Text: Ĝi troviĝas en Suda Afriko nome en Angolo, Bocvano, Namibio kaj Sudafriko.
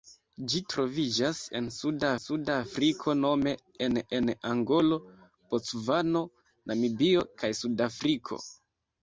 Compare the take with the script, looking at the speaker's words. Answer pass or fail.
fail